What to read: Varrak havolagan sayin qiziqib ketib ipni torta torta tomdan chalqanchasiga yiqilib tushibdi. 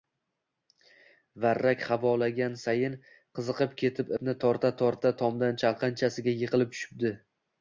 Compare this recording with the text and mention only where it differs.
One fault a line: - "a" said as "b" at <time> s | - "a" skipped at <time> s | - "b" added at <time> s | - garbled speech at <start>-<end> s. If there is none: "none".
none